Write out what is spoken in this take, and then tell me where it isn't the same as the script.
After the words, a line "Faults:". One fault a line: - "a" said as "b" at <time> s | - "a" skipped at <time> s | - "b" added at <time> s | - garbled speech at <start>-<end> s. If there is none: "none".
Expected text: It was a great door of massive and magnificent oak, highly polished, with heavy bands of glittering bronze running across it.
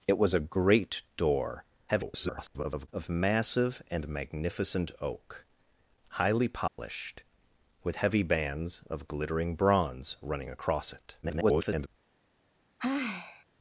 It was a great door [garbled] of massive and magnificent oak, highly polished, with heavy bands of glittering bronze running across it. [garbled]
Faults:
- garbled speech at 1.9-2.9 s
- garbled speech at 11.2-11.9 s